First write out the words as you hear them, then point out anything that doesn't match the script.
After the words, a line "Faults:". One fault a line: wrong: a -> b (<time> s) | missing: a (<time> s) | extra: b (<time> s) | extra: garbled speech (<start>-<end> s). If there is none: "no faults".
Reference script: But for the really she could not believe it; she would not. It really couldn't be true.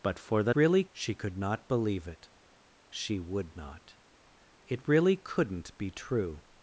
But for the really she could not believe it; she would not. It really couldn't be true.
Faults:
no faults